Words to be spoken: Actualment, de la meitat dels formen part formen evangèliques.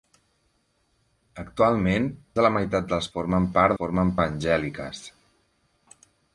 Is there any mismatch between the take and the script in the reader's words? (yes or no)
no